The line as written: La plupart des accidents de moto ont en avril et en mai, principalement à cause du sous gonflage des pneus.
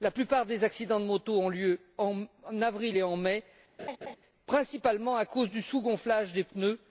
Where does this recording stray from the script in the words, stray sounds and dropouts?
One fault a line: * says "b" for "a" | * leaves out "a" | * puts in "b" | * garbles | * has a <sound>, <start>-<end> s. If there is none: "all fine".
* puts in "lieu"
* has a laugh, 3.8-4.2 s